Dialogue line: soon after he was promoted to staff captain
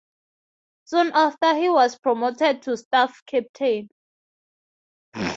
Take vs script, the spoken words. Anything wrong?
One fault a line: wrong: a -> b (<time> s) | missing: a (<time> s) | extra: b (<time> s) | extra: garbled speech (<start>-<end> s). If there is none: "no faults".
no faults